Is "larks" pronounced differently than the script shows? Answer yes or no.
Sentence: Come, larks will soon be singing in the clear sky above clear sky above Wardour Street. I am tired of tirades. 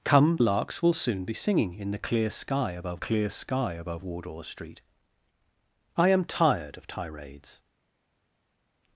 no